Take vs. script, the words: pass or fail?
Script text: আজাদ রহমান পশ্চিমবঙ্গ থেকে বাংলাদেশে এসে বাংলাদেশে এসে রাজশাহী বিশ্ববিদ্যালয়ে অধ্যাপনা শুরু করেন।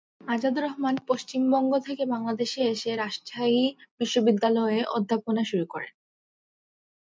fail